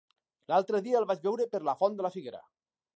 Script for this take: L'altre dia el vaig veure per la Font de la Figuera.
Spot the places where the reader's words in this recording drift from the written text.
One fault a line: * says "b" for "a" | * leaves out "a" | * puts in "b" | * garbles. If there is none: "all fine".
all fine